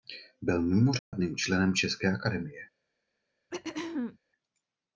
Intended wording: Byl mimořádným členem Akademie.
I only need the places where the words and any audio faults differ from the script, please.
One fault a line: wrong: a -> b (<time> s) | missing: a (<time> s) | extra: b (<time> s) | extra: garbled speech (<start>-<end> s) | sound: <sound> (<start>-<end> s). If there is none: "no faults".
sound: dropout (1.0-1.1 s)
extra: České (1.7 s)
sound: throat clearing (3.5-4.2 s)